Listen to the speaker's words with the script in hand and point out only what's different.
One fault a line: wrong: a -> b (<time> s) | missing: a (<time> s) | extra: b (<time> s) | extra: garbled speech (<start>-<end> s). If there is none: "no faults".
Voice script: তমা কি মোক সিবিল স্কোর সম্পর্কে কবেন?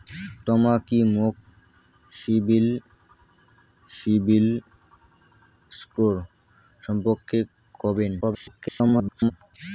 extra: সিবিল (3.9 s)
extra: garbled speech (8.2-9.3 s)